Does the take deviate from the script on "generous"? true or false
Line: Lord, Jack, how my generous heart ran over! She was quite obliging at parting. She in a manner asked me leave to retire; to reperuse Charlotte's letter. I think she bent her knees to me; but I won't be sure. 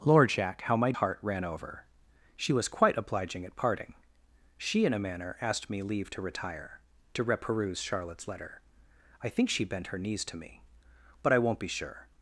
true